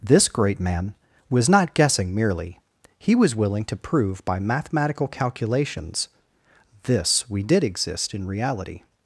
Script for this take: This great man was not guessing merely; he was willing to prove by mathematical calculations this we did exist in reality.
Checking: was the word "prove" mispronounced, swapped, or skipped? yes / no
no